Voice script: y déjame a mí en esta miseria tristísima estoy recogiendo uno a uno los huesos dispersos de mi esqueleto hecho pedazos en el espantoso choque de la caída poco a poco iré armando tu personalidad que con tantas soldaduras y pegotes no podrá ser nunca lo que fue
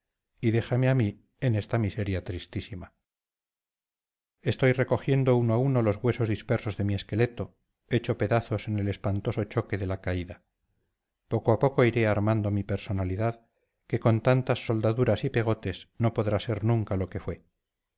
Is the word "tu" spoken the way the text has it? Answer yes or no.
no